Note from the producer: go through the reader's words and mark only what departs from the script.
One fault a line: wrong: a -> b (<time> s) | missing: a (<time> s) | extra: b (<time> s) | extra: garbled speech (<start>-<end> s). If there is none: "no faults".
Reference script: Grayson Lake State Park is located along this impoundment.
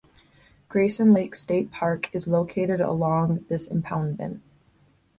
no faults